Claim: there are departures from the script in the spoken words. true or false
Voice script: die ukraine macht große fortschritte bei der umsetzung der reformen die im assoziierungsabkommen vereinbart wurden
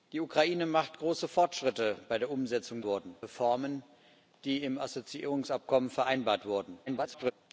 true